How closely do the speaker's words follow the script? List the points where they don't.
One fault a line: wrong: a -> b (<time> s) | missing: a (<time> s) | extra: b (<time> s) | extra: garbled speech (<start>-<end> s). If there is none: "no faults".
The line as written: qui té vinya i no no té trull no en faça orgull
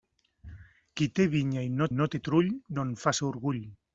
no faults